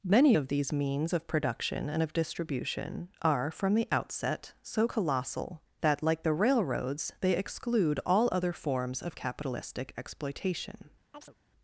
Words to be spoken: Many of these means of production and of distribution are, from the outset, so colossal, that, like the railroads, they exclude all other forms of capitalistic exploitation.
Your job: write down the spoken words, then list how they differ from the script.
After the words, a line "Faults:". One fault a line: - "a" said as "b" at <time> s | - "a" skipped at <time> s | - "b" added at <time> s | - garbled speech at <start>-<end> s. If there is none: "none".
Many of these means of production and of distribution are, from the outset, so colossal, that, like the railroads, they exclude all other forms of capitalistic exploitation.
Faults:
none